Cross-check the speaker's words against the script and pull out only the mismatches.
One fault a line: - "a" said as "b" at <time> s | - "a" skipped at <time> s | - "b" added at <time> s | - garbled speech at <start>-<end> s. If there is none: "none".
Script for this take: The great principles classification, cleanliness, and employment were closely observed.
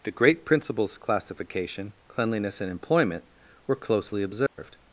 none